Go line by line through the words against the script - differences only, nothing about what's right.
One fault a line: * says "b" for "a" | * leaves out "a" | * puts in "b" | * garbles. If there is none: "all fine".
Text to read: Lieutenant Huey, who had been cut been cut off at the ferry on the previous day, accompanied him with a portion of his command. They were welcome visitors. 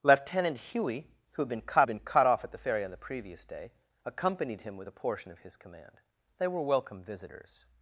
all fine